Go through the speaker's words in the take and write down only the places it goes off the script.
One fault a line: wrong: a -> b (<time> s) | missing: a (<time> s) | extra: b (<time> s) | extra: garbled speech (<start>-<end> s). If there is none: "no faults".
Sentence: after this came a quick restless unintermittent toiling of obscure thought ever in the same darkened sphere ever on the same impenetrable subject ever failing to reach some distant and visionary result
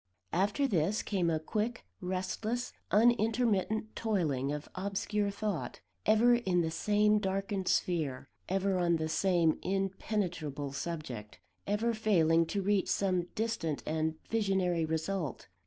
no faults